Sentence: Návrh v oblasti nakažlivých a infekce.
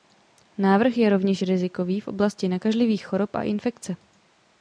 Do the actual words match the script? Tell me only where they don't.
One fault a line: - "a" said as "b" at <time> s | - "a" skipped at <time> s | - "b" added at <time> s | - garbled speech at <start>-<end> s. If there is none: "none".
- "je rovněž rizikový" added at 1.0 s
- "chorob" added at 3.1 s